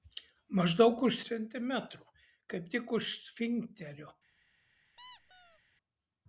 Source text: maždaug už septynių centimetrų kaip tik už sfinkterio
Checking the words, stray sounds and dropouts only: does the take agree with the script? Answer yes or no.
no